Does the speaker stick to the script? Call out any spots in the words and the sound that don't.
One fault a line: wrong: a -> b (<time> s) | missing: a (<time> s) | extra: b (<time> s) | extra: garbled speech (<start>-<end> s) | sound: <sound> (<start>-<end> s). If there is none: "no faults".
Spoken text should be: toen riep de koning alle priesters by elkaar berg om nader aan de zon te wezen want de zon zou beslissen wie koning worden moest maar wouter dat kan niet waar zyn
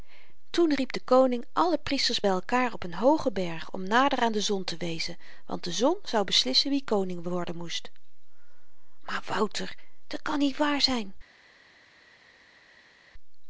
extra: op een hoogen (2.7 s)